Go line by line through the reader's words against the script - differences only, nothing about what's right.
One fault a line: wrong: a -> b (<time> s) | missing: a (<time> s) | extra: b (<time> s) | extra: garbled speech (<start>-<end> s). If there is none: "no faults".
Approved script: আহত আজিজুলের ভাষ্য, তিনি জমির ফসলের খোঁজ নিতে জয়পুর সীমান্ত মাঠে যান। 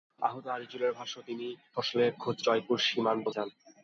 missing: জমির (1.5 s)
missing: নিতে (2.4 s)
missing: মাঠে (3.3 s)